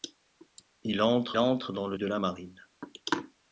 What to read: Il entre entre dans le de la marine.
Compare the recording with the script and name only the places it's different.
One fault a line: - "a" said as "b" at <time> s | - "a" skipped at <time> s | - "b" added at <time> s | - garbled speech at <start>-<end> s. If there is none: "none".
none